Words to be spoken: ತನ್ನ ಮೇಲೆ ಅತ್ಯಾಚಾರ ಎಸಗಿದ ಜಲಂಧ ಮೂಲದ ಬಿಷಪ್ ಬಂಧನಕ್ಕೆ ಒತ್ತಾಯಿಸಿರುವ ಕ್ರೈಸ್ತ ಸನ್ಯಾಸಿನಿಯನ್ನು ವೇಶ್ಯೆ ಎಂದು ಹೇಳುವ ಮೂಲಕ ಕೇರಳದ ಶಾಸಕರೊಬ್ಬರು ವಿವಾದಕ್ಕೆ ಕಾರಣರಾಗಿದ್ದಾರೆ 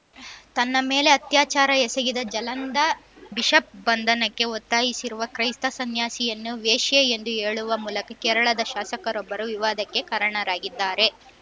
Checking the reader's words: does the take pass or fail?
fail